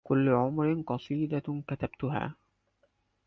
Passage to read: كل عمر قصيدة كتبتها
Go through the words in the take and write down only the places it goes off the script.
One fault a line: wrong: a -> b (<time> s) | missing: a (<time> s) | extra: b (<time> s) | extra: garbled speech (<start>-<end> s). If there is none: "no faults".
no faults